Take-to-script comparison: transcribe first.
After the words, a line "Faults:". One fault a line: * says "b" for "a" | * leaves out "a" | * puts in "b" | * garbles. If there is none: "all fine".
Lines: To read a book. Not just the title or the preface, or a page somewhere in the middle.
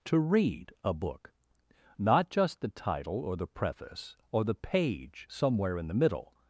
To read a book. Not just the title or the preface, or the page somewhere in the middle.
Faults:
* says "the" for "a"